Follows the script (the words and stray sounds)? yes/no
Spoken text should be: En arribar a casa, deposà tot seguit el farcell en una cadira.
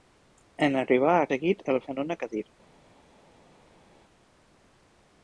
no